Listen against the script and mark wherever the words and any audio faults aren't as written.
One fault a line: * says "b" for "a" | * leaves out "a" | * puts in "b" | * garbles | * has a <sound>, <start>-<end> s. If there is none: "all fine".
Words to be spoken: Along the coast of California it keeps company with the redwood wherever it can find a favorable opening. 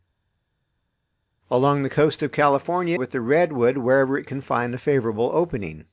* leaves out "it keeps company"